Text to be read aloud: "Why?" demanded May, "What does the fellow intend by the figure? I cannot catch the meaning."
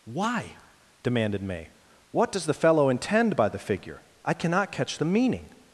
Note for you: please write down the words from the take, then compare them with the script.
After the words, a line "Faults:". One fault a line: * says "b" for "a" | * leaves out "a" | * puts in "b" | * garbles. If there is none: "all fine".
"Why?" demanded May, "What does the fellow intend by the figure? I cannot catch the meaning."
Faults:
all fine